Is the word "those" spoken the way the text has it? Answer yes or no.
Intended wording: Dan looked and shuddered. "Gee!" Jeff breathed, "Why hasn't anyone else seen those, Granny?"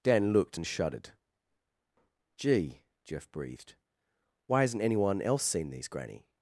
no